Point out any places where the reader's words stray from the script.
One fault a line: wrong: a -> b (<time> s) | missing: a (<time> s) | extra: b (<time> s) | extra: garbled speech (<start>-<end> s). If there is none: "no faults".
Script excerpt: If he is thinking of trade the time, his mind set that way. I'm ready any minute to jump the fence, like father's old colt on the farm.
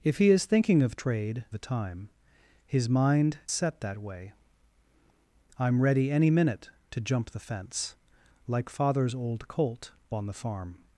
no faults